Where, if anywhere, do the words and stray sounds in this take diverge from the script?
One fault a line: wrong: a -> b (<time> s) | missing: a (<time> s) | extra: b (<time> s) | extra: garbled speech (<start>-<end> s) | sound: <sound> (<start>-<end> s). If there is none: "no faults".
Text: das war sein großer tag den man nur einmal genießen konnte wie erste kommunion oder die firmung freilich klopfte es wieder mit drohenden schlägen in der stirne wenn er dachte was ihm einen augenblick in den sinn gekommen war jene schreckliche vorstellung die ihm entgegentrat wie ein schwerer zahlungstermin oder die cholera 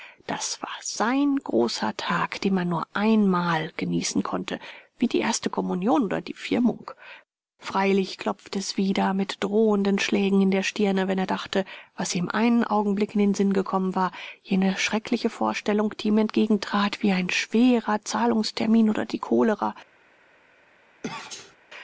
extra: die (5.1 s)
sound: sneeze (21.0-21.6 s)